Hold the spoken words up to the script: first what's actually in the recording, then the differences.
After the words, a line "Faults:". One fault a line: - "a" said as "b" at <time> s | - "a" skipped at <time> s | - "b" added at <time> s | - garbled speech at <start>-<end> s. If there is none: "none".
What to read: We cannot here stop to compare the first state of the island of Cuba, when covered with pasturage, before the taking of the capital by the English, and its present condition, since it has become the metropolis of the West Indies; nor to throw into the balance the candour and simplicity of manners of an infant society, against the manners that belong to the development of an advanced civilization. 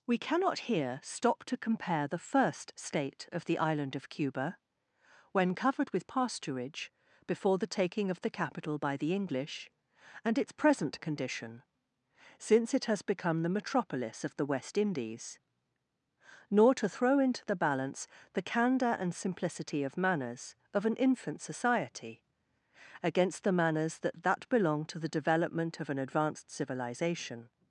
We cannot here stop to compare the first state of the island of Cuba, when covered with pasturage, before the taking of the capital by the English, and its present condition, since it has become the metropolis of the West Indies; nor to throw into the balance the candour and simplicity of manners of an infant society, against the manners that that belong to the development of an advanced civilization.
Faults:
- "that" added at 24.2 s